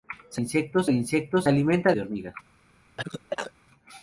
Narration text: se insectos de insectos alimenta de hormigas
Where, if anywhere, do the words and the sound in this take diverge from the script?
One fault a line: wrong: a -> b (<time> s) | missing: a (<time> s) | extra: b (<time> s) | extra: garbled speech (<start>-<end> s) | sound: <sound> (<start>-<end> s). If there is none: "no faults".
sound: cough (3.0-3.5 s)